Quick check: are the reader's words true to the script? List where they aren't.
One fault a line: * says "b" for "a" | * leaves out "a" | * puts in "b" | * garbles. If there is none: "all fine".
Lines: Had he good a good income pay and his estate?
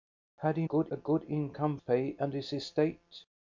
all fine